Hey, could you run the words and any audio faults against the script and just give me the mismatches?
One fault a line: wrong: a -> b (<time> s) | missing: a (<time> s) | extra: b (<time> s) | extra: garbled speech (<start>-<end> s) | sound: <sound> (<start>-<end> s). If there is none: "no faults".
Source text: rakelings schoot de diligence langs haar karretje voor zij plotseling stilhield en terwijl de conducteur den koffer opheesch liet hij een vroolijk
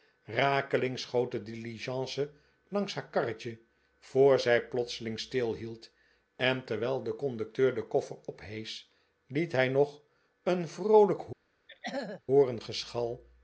extra: nog (9.7 s)
sound: throat clearing (11.7-12.2 s)